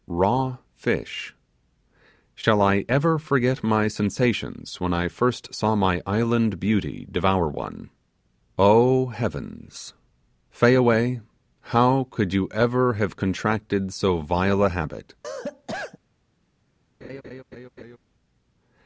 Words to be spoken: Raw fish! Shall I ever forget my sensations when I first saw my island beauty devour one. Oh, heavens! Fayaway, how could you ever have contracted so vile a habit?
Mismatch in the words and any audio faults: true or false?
true